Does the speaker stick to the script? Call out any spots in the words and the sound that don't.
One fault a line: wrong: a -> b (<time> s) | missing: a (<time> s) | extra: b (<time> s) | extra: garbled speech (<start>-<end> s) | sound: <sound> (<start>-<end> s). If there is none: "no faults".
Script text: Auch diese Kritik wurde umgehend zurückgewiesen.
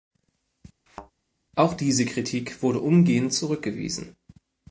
sound: thud (0.9-1.1 s)